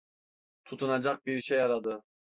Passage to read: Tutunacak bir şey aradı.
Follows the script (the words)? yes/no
yes